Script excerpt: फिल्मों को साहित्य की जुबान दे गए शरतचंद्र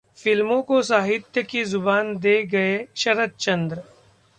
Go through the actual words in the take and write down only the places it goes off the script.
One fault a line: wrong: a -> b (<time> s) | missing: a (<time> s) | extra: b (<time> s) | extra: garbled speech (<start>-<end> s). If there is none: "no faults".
no faults